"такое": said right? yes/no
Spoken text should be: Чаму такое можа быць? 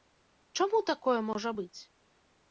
yes